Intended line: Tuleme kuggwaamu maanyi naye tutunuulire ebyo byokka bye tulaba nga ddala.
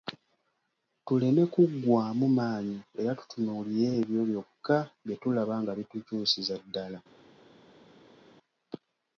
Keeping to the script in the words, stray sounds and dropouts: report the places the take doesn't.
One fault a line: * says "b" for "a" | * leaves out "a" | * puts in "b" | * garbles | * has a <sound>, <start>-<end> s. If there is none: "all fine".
* says "era" for "naye"
* puts in "bitukyusiza"